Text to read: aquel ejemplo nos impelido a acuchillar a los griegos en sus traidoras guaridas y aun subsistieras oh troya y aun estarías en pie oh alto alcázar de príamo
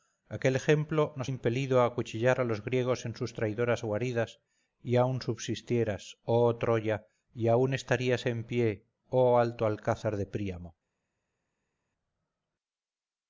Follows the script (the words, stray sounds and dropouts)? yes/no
yes